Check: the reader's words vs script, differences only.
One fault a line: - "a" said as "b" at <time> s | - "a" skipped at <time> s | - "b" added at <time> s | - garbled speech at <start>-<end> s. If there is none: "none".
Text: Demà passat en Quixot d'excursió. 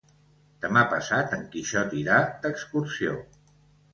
- "irà" added at 2.0 s